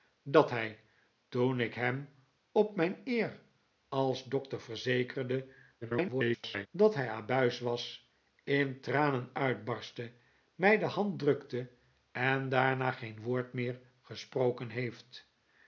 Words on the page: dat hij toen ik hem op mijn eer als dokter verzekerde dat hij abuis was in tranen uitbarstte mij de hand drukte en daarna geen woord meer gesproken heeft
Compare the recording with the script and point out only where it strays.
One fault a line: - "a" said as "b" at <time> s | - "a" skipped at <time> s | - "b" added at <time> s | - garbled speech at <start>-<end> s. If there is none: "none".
- garbled speech at 5.8-6.7 s